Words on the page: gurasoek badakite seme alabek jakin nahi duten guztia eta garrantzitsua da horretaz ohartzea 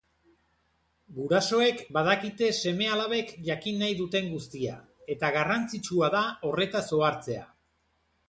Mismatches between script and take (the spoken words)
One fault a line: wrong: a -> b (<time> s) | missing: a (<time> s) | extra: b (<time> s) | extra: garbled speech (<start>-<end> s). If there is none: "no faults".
no faults